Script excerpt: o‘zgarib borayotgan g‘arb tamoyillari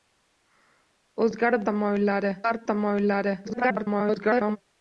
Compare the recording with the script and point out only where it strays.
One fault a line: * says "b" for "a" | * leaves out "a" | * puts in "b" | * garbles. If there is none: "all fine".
* says "tamoyillari" for "borayotgan"
* garbles